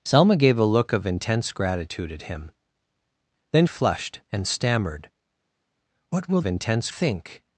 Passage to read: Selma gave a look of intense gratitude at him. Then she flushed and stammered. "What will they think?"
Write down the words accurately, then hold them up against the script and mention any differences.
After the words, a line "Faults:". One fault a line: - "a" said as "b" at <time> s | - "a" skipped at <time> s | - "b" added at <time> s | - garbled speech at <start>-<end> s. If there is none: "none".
Selma gave a look of intense gratitude at him. Then flushed and stammered. "What will intense think?"
Faults:
- "she" skipped at 3.7 s
- "they" said as "intense" at 6.4 s